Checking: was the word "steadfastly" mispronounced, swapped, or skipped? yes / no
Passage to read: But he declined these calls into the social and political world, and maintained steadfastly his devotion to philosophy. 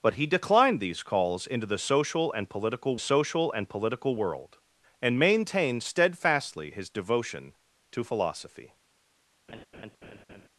no